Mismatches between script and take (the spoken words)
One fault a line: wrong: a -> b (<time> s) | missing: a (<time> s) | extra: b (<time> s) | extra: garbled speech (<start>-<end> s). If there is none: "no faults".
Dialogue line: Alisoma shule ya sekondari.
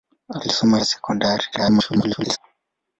missing: shule (0.8 s)
extra: garbled speech (1.5-2.4 s)